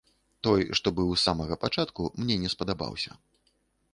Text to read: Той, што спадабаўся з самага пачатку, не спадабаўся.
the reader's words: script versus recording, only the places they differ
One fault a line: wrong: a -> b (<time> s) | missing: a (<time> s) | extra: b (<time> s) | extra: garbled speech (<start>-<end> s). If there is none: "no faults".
wrong: спадабаўся -> быў (1.0 s)
extra: мне (2.2 s)